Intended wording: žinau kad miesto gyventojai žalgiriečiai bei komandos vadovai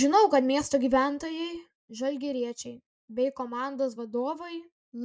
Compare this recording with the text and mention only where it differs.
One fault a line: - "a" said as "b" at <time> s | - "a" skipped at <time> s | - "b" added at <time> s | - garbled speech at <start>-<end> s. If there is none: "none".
none